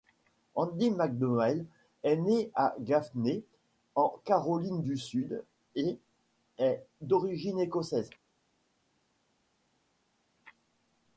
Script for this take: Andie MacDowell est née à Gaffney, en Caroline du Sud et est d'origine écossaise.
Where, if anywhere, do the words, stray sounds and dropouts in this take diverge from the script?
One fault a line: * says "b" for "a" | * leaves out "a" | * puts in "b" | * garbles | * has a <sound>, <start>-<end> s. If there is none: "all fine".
all fine